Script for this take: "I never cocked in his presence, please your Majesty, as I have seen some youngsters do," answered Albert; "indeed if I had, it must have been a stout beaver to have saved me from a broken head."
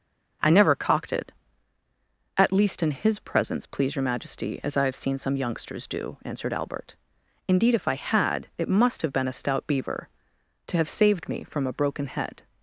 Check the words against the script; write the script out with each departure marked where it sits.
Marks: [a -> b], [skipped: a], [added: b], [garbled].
"I never cocked [added: it at least] in his presence, please your Majesty, as I have seen some youngsters do," answered Albert; "indeed if I had, it must have been a stout beaver to have saved me from a broken head."